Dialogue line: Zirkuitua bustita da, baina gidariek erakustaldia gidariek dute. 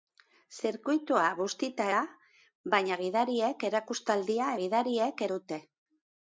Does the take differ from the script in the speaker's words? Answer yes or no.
no